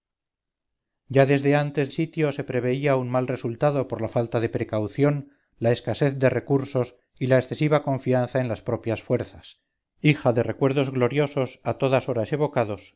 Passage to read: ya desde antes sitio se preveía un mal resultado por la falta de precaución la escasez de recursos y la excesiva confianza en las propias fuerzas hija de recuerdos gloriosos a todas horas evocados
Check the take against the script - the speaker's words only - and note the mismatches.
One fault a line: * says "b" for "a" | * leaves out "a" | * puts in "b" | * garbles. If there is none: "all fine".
all fine